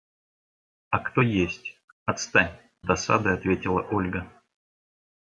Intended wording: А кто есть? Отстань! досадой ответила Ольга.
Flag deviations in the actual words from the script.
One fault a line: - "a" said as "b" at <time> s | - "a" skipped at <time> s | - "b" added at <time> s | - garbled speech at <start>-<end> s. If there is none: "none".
none